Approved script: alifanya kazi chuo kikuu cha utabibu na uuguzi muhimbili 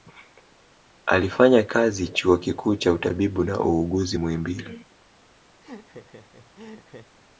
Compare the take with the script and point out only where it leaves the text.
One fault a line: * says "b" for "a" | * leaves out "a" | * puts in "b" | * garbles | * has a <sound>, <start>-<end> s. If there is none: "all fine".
* has a laugh, 5.6-7.2 s